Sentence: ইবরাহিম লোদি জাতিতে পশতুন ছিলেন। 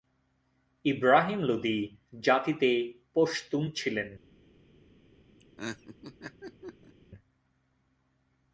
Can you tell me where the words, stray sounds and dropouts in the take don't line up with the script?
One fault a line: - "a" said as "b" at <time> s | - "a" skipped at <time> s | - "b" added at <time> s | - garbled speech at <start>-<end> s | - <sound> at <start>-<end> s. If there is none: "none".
- laugh at 5.4-6.9 s